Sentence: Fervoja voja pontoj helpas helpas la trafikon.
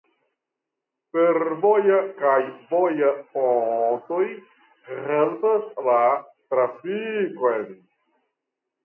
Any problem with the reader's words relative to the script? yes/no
yes